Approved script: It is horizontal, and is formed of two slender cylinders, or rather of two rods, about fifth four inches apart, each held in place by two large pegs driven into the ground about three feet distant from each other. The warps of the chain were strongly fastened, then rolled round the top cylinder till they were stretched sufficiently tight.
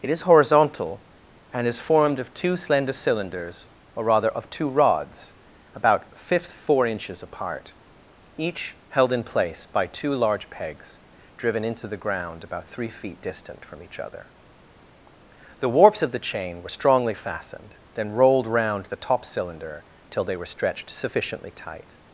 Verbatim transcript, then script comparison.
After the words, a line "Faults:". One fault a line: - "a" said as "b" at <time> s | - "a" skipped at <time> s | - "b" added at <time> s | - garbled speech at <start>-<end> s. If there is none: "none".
It is horizontal, and is formed of two slender cylinders, or rather of two rods, about fifth four inches apart, each held in place by two large pegs driven into the ground about three feet distant from each other. The warps of the chain were strongly fastened, then rolled round the top cylinder till they were stretched sufficiently tight.
Faults:
none